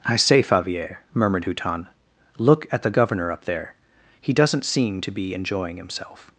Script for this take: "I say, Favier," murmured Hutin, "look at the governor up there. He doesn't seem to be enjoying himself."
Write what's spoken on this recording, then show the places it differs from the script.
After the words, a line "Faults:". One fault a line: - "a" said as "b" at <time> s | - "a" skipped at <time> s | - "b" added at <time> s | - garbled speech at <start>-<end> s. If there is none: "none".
"I say, Favier," murmured Hutin, "look at the governor up there. He doesn't seem to be enjoying himself."
Faults:
none